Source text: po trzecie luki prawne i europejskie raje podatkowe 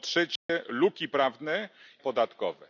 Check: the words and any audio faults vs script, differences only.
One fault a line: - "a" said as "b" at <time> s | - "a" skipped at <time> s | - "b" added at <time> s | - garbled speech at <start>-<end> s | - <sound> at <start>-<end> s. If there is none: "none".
- dropout at 0.4-0.5 s
- "i europejskie raje" skipped at 1.7 s